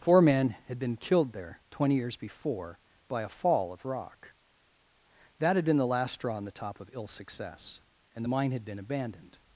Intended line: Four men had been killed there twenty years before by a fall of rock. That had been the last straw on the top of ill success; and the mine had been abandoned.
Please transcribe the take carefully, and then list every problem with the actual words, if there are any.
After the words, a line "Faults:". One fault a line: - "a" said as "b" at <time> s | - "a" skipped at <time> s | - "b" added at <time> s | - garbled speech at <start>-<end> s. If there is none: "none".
Four men had been killed there twenty years before by a fall of rock. That had been the last straw on the top of ill success; and the mine had been abandoned.
Faults:
none